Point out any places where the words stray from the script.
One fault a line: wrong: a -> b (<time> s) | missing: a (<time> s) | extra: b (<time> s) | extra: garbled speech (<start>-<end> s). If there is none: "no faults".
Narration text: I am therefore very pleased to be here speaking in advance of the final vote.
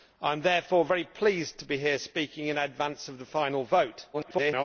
extra: garbled speech (4.1-4.6 s)